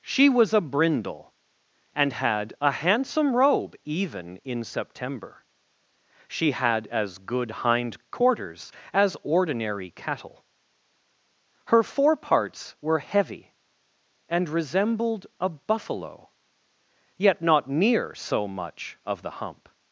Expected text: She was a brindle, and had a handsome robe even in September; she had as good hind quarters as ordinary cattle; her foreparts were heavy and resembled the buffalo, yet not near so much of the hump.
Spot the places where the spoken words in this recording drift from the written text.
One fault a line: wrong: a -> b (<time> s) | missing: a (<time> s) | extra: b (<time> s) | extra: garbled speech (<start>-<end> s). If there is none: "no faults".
wrong: the -> a (15.4 s)